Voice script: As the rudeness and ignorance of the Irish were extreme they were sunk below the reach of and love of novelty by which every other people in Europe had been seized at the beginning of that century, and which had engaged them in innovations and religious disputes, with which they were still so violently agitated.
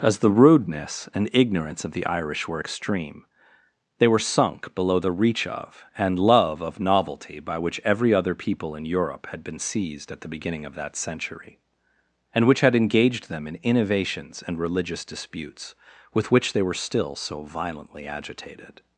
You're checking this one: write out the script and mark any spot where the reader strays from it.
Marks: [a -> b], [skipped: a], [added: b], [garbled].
As the rudeness and ignorance of the Irish were extreme they were sunk below the reach of and love of novelty by which every other people in Europe had been seized at the beginning of that century, and which had engaged them in innovations and religious disputes, with which they were still so violently agitated.